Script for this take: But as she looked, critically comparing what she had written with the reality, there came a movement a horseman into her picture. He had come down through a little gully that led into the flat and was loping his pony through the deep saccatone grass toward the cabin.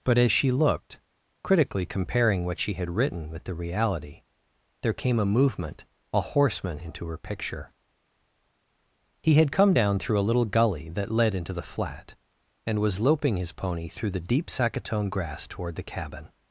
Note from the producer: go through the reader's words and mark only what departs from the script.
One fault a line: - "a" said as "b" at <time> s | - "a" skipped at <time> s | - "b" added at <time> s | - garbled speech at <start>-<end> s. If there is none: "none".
none